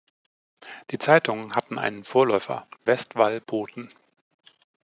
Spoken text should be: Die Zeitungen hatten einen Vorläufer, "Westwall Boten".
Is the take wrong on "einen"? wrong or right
right